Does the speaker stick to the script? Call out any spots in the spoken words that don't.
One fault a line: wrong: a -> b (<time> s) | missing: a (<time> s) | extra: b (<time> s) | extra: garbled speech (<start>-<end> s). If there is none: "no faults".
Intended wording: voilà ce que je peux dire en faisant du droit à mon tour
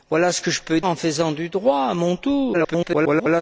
missing: dire (0.8 s)
extra: garbled speech (2.5-3.4 s)